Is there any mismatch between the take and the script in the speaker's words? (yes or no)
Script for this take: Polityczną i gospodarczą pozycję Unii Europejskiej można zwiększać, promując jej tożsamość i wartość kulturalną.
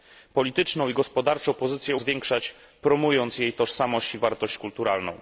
yes